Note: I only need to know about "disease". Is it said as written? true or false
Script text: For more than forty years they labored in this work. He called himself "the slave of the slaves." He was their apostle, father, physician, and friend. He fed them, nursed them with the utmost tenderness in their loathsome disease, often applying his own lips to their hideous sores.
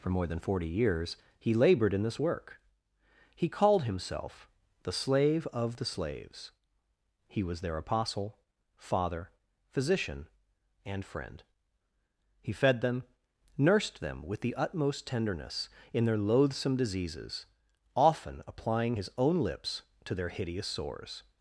false